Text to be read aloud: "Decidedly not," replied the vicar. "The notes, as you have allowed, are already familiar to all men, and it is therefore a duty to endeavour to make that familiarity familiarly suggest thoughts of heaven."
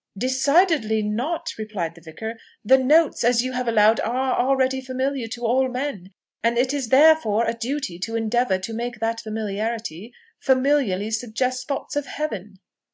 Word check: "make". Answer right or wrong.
right